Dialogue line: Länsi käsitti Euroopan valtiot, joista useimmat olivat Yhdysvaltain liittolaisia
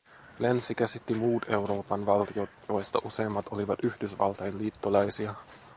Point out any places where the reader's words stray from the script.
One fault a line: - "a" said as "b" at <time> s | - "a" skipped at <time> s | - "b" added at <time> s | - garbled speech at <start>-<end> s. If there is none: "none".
- "muut" added at 1.1 s